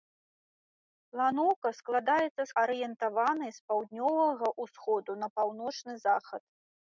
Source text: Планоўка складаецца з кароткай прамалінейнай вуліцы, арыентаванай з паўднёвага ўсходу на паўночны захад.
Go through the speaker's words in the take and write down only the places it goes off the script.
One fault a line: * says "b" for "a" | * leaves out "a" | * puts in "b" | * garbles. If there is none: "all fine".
* leaves out "кароткай прамалінейнай вуліцы"